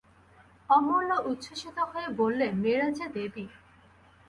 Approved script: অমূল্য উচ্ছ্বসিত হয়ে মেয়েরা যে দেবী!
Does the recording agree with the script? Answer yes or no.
no